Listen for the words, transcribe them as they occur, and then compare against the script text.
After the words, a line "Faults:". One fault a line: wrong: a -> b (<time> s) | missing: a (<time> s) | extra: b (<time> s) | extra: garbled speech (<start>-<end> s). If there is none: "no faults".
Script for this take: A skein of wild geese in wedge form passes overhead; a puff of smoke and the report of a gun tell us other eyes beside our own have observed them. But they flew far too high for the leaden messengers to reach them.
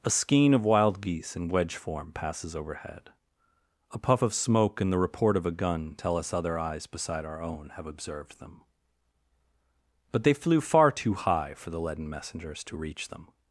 A skein of wild geese in wedge form passes overhead; a puff of smoke and the report of a gun tell us other eyes beside our own have observed them. But they flew far too high for the leaden messengers to reach them.
Faults:
no faults